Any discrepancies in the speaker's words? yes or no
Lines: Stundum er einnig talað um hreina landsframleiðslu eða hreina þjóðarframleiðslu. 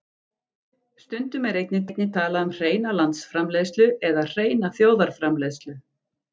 yes